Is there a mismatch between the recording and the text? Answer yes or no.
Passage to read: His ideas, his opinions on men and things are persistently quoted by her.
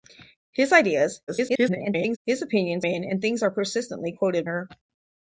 yes